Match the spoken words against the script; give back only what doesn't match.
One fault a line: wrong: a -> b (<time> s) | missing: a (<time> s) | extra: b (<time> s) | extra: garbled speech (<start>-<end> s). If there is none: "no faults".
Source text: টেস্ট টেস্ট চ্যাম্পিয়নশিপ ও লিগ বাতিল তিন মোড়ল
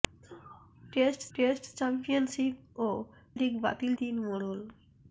no faults